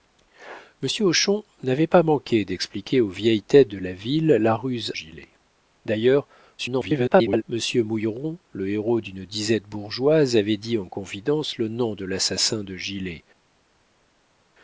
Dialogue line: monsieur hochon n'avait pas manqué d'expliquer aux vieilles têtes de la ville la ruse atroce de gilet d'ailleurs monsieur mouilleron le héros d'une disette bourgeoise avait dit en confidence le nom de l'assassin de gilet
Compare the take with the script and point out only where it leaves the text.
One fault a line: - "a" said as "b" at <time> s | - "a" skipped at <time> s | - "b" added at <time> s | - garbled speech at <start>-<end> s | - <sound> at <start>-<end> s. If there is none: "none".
- "atroce de" skipped at 4.9 s
- garbled speech at 6.6-7.4 s